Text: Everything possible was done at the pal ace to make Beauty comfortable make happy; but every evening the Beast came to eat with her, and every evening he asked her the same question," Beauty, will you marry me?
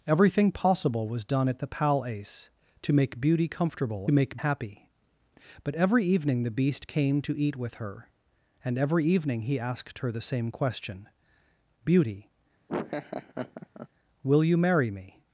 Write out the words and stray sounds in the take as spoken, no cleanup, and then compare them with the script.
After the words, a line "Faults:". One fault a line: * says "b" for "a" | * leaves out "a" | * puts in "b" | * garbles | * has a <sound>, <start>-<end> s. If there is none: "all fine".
Everything possible was done at the pal ace to make Beauty comfortable make happy; but every evening the Beast came to eat with her, and every evening he asked her the same question," Beauty, will you marry me?
Faults:
* has a laugh, 12.7-13.9 s